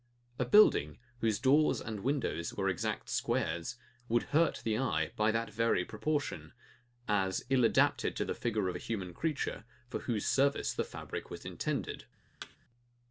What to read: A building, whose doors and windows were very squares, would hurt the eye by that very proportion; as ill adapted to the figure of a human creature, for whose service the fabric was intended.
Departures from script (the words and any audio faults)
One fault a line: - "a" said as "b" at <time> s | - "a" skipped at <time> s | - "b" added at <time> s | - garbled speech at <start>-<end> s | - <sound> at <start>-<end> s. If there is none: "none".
- "very" said as "exact" at 2.7 s
- thud at 12.4-12.6 s